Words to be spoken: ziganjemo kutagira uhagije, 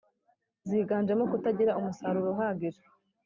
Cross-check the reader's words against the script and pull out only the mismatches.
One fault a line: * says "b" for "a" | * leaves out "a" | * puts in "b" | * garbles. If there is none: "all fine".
* puts in "umusaruro"